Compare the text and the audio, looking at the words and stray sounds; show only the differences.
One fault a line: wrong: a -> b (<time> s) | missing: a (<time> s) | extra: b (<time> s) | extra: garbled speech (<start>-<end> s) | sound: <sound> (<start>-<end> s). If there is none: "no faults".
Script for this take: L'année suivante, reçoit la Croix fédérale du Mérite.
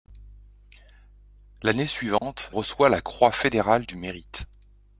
sound: dropout (2.2-2.2 s)